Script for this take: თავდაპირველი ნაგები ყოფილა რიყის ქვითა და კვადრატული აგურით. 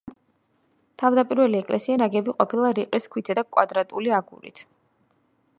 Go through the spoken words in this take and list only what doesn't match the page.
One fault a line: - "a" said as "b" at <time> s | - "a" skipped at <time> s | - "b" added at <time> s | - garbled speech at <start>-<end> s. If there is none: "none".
- "ეკლესია" added at 1.6 s